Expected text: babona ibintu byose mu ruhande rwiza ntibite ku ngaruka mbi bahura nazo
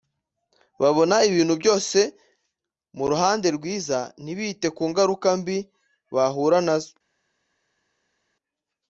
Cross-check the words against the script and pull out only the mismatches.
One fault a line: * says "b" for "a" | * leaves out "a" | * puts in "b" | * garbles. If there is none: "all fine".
all fine